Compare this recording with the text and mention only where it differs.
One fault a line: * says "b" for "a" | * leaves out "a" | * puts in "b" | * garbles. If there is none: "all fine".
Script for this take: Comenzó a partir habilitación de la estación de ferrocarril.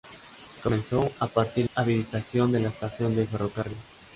all fine